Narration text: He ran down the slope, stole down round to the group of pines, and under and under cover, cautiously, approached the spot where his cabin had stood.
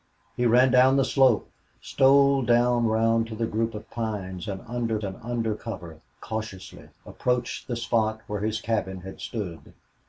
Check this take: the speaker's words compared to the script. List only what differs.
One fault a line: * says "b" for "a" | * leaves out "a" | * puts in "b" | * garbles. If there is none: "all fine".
all fine